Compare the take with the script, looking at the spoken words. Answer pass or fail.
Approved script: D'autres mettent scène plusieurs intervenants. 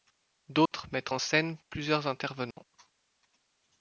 fail